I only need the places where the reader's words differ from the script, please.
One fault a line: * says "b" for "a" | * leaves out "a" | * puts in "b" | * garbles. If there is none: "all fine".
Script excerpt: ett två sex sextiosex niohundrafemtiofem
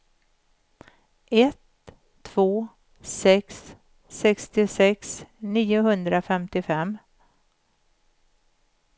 all fine